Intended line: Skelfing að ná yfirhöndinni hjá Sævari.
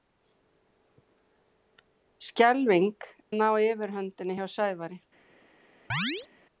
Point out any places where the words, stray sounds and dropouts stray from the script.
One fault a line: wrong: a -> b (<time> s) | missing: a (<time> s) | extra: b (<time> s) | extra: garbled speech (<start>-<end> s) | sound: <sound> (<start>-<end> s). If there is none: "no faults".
sound: chirp (5.9-6.3 s)